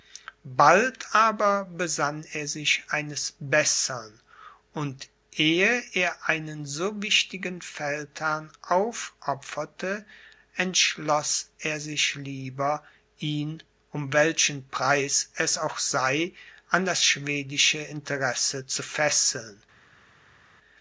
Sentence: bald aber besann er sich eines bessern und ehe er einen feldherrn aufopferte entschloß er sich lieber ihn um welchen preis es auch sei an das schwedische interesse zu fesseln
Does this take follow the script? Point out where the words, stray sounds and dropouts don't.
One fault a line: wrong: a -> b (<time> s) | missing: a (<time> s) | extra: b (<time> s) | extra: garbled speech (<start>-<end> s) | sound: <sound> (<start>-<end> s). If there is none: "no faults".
extra: so wichtigen (6.7 s)